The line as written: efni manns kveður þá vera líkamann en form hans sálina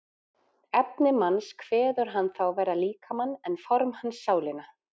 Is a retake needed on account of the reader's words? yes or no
yes